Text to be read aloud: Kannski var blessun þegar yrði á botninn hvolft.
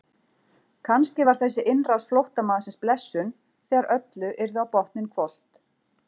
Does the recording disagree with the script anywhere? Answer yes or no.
yes